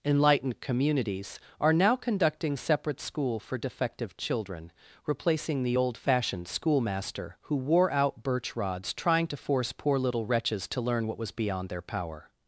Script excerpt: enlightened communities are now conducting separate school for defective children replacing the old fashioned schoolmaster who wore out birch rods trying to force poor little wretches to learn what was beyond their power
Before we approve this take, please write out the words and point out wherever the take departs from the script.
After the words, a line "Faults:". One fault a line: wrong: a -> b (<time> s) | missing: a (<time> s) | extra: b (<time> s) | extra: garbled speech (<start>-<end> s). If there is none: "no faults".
enlightened communities are now conducting separate school for defective children replacing the old fashioned schoolmaster who wore out birch rods trying to force poor little wretches to learn what was beyond their power
Faults:
no faults